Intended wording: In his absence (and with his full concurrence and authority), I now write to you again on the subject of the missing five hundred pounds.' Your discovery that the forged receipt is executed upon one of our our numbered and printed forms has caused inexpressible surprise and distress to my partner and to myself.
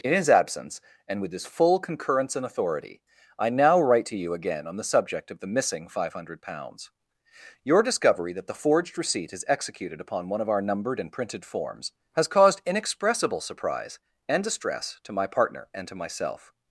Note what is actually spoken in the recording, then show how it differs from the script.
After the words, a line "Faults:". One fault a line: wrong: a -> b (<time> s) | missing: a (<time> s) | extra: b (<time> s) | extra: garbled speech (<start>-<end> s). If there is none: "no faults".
In his absence (and with his full concurrence and authority), I now write to you again on the subject of the missing five hundred pounds.' Your discovery that the forged receipt is executed upon one of our numbered and printed forms has caused inexpressible surprise and distress to my partner and to myself.
Faults:
missing: our (10.6 s)